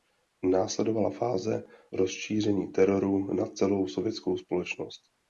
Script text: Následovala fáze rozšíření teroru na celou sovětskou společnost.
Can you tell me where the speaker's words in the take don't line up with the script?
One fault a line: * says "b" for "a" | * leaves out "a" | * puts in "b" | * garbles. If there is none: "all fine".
all fine